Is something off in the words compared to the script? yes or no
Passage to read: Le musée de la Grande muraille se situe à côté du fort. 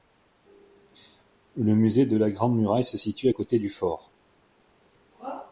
no